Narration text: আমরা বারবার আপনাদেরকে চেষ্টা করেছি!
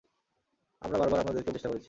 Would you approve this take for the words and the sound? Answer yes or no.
yes